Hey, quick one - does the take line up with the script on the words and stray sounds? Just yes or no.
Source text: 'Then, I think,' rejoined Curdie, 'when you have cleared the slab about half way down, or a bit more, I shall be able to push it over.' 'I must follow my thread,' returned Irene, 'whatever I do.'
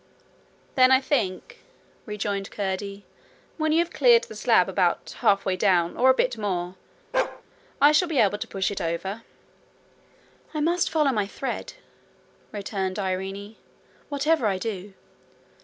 no